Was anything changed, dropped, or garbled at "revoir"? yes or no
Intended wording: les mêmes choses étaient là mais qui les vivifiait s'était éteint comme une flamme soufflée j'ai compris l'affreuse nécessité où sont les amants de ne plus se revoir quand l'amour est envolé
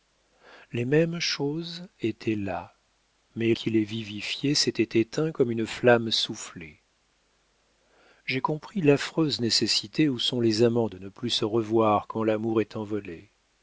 no